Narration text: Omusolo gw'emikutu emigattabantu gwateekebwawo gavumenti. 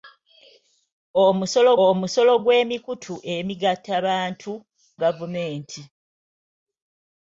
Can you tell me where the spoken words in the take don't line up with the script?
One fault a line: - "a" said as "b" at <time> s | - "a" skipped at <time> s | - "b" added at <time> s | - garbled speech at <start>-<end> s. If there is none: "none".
- "omusolo" added at 1.9 s
- "gwateekebwawo" skipped at 4.5 s